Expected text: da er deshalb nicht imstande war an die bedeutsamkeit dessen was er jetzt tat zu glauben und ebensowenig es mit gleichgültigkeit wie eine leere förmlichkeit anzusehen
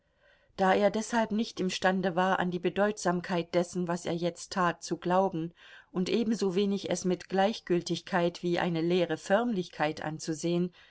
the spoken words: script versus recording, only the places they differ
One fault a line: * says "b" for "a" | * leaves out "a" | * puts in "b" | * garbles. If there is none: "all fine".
all fine